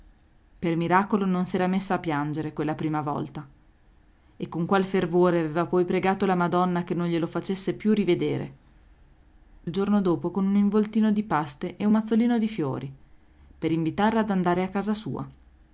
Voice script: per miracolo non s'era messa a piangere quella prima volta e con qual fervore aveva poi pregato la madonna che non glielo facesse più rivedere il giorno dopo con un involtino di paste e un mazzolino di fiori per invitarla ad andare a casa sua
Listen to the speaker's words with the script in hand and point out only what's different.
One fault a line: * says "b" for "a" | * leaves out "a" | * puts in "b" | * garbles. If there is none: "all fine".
all fine